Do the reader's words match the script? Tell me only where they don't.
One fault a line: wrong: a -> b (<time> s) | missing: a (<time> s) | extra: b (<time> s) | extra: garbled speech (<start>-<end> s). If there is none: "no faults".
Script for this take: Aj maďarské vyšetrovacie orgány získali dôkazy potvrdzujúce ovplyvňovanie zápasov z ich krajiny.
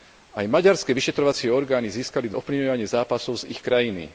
missing: dôkazy potvrdzujúce (2.3 s)